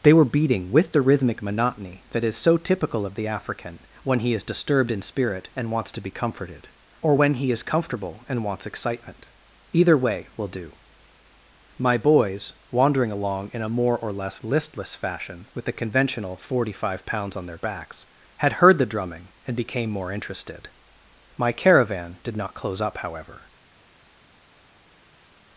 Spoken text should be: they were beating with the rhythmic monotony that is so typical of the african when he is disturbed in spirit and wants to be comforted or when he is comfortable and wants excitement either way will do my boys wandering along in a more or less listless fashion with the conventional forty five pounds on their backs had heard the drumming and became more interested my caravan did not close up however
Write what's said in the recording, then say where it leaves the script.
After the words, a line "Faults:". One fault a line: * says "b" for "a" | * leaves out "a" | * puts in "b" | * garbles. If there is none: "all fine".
they were beating with the rhythmic monotony that is so typical of the african when he is disturbed in spirit and wants to be comforted or when he is comfortable and wants excitement either way will do my boys wandering along in a more or less listless fashion with the conventional forty five pounds on their backs had heard the drumming and became more interested my caravan did not close up however
Faults:
all fine